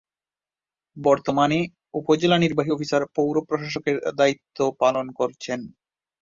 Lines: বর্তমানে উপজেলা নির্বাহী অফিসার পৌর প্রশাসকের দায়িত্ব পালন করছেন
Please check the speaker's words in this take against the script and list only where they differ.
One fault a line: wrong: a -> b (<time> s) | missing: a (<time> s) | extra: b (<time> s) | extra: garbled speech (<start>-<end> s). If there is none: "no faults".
no faults